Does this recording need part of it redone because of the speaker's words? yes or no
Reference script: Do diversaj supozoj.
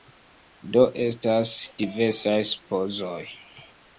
yes